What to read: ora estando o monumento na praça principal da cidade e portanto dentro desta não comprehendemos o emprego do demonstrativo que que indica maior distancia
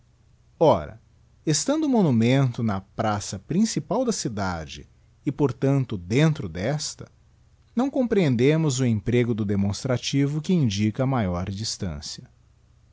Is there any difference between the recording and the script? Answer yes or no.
yes